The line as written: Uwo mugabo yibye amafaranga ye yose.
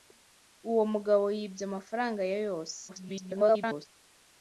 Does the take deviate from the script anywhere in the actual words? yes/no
yes